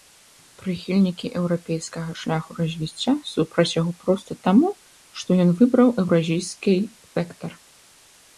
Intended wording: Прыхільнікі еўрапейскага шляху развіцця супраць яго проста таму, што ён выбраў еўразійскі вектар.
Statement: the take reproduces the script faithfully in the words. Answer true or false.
true